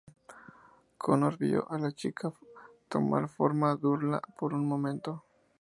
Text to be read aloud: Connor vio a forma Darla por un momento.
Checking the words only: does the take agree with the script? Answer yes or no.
no